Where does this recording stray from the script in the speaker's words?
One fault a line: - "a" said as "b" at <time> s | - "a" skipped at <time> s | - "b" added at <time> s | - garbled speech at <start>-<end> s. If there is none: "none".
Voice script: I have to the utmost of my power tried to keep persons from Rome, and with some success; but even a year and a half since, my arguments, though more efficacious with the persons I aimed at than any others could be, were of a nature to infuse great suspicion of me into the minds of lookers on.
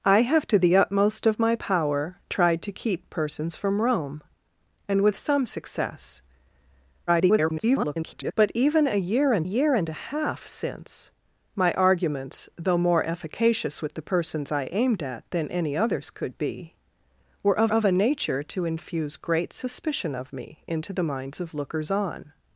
- garbled speech at 7.1-8.3 s
- "year and" added at 9.4 s
- "of" added at 17.7 s